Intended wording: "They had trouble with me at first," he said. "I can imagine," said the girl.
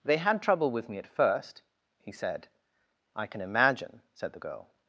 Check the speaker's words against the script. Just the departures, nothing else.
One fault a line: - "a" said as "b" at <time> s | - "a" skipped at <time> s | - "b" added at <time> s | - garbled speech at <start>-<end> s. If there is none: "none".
none